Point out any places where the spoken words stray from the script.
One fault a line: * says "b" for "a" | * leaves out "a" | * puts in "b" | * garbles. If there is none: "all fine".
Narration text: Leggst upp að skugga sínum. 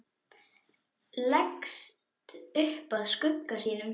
all fine